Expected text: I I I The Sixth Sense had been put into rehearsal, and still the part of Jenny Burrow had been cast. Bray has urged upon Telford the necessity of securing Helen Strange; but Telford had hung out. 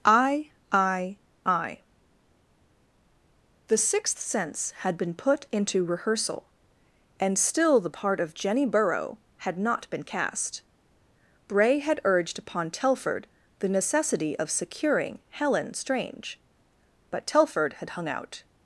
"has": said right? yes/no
no